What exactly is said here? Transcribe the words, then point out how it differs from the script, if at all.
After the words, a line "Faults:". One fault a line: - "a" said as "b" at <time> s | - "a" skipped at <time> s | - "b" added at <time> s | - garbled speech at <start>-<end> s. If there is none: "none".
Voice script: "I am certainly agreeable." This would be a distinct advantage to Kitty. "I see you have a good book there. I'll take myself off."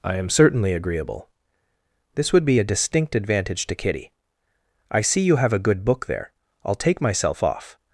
"I am certainly agreeable." This would be a distinct advantage to Kitty. "I see you have a good book there. I'll take myself off."
Faults:
none